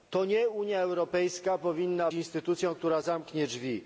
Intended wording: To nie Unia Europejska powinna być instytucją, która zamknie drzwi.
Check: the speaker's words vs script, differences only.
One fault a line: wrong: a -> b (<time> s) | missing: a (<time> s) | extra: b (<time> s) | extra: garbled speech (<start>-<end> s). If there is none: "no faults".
missing: być (2.1 s)